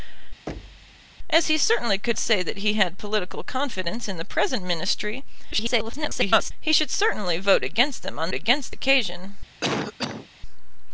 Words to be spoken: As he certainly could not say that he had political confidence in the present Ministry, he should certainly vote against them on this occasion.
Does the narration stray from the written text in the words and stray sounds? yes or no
yes